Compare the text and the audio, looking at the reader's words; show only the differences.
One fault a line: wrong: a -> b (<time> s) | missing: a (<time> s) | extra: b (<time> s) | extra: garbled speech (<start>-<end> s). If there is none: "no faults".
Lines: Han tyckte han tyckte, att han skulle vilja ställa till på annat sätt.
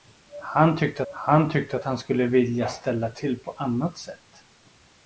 no faults